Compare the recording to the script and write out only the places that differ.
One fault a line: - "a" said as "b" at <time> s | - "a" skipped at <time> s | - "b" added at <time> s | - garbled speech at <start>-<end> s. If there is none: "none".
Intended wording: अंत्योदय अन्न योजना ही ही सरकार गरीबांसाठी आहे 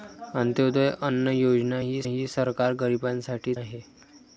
none